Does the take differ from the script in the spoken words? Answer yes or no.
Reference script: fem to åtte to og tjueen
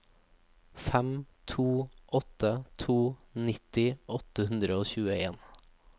yes